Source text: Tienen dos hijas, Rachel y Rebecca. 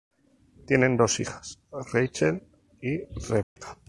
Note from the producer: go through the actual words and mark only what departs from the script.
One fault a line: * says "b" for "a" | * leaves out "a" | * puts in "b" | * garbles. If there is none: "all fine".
all fine